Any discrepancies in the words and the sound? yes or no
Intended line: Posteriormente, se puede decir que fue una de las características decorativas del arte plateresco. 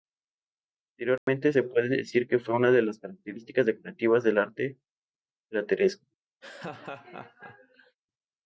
yes